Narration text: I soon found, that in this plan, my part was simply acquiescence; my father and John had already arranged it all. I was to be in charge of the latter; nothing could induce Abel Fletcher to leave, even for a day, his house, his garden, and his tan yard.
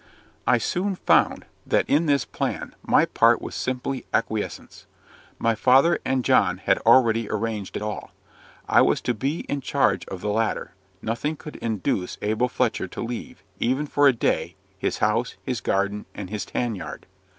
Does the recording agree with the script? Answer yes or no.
yes